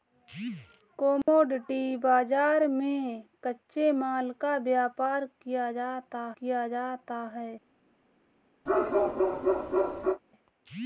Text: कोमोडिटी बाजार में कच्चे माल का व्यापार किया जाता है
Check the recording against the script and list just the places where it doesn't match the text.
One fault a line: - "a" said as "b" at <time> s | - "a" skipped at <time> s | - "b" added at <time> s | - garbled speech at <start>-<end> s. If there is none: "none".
- "किया जाता" added at 6.4 s